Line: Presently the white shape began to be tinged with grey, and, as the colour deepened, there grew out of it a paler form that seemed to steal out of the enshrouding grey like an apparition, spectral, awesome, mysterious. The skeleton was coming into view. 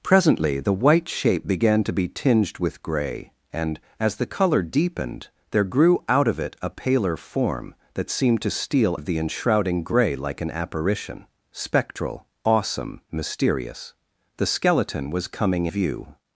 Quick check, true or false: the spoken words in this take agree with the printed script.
false